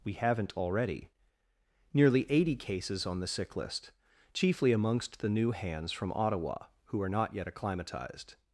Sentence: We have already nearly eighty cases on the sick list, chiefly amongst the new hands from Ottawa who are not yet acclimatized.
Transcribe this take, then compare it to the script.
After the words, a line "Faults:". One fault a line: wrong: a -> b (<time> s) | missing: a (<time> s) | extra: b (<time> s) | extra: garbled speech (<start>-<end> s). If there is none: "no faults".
We haven't already nearly eighty cases on the sick list, chiefly amongst the new hands from Ottawa who are not yet acclimatized.
Faults:
wrong: have -> haven't (0.1 s)